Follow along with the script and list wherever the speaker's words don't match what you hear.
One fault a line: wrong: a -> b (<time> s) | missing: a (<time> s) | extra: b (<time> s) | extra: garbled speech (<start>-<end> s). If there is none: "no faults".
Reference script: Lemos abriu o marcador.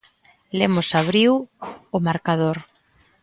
no faults